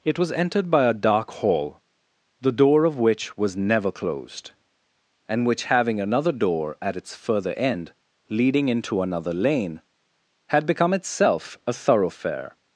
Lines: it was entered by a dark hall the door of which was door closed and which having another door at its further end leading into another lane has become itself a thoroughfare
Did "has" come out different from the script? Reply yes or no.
yes